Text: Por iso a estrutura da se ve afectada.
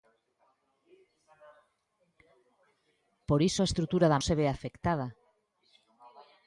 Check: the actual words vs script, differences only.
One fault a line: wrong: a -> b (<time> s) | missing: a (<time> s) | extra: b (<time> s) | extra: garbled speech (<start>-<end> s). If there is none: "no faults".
no faults